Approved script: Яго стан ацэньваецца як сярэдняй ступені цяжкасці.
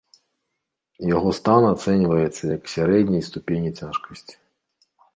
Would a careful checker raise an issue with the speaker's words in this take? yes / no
no